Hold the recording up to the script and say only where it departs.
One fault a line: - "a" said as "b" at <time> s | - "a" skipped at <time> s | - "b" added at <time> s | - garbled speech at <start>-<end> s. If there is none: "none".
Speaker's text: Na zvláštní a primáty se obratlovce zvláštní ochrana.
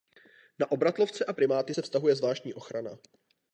- "zvláštní" said as "obratlovce" at 0.7 s
- "obratlovce" said as "vztahuje" at 1.8 s